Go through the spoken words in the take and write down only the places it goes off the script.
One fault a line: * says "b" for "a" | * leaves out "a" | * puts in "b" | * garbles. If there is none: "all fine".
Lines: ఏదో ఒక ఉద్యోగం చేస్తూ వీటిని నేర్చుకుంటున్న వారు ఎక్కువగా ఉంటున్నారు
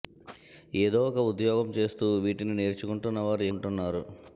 * leaves out "ఎక్కువగా"